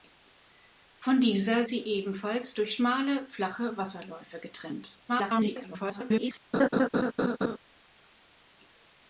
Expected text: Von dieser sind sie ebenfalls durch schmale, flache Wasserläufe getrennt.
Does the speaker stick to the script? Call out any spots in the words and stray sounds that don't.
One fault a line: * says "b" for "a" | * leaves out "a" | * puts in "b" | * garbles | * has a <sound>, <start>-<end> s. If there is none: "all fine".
* leaves out "sind"
* garbles
* has a laugh, 6.5-7.6 s